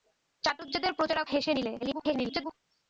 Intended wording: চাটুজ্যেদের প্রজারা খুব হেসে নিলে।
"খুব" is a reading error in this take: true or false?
true